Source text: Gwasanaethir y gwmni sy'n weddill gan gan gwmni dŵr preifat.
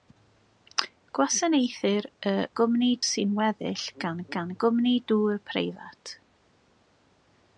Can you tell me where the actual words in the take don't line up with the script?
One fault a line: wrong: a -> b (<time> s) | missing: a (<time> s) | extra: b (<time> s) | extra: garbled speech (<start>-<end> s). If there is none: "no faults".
no faults